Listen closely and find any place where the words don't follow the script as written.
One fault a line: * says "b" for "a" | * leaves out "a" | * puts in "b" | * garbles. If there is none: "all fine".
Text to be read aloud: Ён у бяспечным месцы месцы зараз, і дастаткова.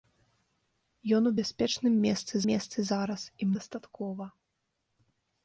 all fine